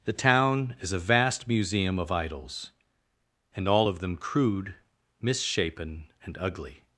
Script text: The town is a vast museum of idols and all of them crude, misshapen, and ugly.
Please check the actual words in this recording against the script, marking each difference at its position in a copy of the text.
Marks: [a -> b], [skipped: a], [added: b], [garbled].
The town is a vast museum of idols and all of them crude, misshapen, and ugly.